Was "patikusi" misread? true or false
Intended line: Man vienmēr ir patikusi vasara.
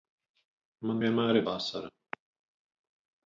true